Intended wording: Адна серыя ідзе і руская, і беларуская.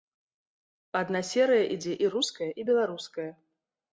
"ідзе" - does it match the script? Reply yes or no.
yes